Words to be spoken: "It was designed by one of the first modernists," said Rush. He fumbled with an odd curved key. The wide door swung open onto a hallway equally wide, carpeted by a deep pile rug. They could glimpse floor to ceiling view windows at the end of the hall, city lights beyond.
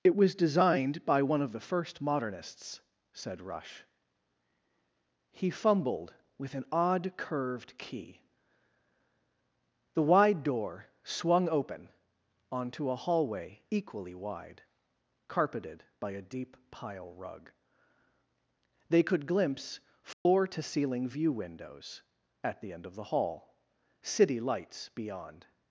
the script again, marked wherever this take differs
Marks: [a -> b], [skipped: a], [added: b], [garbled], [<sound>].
"It was designed by one of the first modernists," said Rush. He fumbled with an odd curved key. The wide door swung open onto a hallway equally wide, carpeted by a deep pile rug. They could glimpse floor [dropout] to ceiling view windows at the end of the hall, city lights beyond.